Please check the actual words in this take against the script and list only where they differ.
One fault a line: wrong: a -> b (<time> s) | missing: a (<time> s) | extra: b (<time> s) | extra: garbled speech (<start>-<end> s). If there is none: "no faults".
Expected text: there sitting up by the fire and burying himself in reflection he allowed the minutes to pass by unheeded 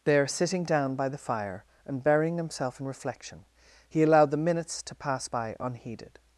wrong: up -> down (0.6 s)